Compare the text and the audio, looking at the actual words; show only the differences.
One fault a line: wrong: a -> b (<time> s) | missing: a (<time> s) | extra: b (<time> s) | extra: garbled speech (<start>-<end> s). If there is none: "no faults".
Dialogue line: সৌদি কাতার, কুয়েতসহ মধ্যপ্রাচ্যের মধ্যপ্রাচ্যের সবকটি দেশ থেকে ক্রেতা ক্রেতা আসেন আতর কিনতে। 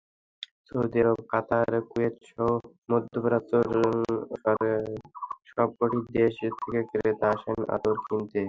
extra: আরব (1.0 s)
missing: মধ্যপ্রাচ্যের (3.7 s)
missing: ক্রেতা (7.3 s)